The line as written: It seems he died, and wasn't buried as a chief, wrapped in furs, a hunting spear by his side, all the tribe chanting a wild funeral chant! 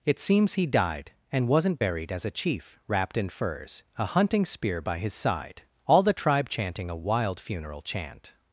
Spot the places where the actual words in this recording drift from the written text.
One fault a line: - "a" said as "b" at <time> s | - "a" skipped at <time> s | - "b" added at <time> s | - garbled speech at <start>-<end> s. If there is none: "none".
none